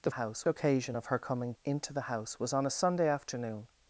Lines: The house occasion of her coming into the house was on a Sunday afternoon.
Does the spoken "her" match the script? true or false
true